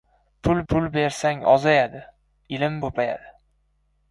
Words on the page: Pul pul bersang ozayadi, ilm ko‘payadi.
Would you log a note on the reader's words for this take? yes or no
no